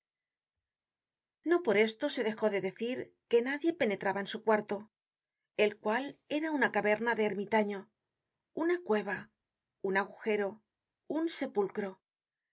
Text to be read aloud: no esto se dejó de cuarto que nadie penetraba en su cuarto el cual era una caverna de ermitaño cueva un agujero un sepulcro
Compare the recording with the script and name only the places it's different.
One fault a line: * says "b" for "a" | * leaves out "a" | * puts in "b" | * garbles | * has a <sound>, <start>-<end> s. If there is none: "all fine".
* puts in "por"
* says "decir" for "cuarto"
* puts in "una"